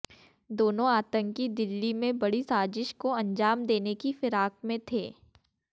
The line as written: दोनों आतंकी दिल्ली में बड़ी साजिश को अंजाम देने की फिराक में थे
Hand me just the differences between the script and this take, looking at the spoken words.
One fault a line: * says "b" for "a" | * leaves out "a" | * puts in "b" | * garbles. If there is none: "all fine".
all fine